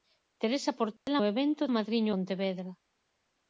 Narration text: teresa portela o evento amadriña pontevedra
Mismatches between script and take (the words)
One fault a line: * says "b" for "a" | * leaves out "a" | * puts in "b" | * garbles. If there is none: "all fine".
all fine